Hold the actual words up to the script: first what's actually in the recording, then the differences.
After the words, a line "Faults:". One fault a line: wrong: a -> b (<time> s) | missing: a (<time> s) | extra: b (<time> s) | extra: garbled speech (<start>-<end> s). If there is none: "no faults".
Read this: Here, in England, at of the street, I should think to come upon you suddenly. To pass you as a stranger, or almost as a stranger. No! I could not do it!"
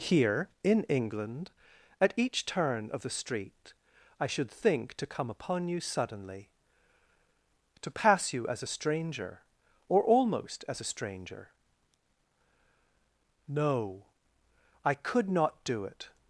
Here, in England, at each turn of the street, I should think to come upon you suddenly. To pass you as a stranger, or almost as a stranger. No! I could not do it!"
Faults:
extra: each turn (2.2 s)